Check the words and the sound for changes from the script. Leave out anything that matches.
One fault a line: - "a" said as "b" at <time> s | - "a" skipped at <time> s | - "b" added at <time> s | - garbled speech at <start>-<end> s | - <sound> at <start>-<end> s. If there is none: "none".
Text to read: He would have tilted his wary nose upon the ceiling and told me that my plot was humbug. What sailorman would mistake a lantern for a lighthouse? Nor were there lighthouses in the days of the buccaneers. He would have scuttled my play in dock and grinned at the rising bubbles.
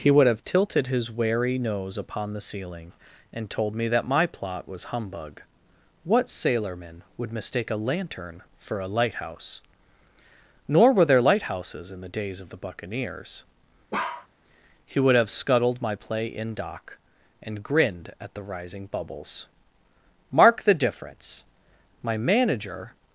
- bark at 13.9-14.3 s
- "Mark the difference My manager" added at 20.3 s